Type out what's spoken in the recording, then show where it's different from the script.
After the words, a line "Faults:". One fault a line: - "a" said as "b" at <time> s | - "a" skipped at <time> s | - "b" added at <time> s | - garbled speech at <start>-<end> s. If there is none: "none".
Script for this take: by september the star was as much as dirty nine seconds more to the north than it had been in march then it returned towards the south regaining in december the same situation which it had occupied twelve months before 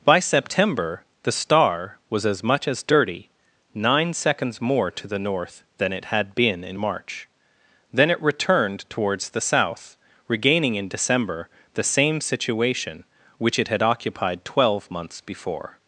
by september the star was as much as dirty nine seconds more to the north than it had been in march then it returned towards the south regaining in december the same situation which it had occupied twelve months before
Faults:
none